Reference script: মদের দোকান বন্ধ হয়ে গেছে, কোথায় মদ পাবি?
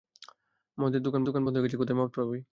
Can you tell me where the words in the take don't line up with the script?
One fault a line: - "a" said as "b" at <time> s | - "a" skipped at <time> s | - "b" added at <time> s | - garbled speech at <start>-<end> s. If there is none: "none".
- "দোকান" added at 1.2 s